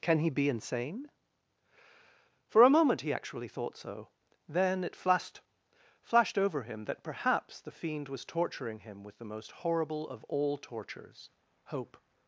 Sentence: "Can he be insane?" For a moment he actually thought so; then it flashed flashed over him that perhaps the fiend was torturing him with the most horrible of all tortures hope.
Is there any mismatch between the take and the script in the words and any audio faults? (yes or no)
no